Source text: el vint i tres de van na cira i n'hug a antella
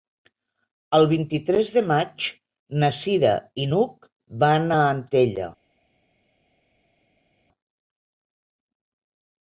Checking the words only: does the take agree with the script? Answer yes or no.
no